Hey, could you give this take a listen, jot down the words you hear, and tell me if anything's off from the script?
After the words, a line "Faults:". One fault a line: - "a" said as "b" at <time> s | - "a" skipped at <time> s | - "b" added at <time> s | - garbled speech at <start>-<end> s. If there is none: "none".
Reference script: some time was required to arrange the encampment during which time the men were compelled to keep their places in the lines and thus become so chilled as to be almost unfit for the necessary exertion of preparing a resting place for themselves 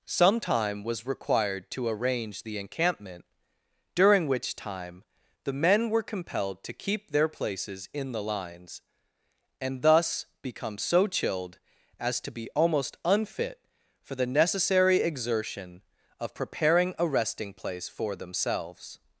some time was required to arrange the encampment during which time the men were compelled to keep their places in the lines and thus become so chilled as to be almost unfit for the necessary exertion of preparing a resting place for themselves
Faults:
none